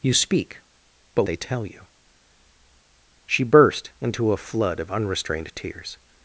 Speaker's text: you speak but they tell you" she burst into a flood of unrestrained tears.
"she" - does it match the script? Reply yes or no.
yes